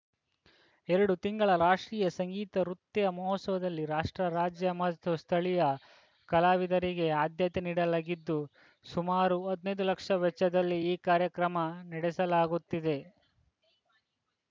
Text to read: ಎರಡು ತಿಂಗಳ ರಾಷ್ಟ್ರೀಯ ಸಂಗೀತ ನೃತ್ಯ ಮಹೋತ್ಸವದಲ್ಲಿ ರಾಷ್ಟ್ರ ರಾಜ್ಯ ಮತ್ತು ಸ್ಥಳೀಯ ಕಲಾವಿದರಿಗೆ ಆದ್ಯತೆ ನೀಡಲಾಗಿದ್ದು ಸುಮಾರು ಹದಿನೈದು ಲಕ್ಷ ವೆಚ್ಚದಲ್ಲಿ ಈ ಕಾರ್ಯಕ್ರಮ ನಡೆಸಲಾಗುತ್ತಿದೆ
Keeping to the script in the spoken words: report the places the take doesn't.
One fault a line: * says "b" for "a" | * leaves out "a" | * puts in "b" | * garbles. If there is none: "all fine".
all fine